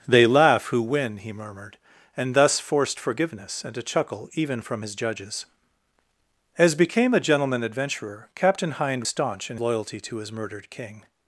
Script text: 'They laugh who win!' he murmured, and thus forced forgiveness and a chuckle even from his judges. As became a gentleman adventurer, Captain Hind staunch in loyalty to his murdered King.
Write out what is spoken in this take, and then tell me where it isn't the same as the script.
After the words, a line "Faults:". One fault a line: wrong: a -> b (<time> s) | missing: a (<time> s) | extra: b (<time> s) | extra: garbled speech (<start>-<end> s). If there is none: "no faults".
'They laugh who win!' he murmured, and thus forced forgiveness and a chuckle even from his judges. As became a gentleman adventurer, Captain Hind staunch in loyalty to his murdered King.
Faults:
no faults